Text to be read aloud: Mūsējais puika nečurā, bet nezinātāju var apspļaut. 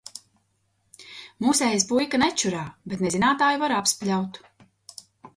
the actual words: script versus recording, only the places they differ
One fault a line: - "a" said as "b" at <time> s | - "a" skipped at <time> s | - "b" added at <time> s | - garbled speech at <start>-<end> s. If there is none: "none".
none